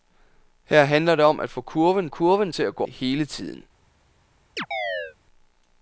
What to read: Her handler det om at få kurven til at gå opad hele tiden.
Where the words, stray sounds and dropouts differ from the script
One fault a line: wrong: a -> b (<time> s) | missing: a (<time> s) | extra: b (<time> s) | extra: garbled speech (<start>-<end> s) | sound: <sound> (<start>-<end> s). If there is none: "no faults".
extra: kurven (2.1 s)
missing: opad (2.8 s)
sound: chirp (4.6-5.2 s)